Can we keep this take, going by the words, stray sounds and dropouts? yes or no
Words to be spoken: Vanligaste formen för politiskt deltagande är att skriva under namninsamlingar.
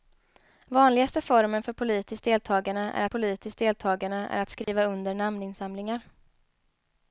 no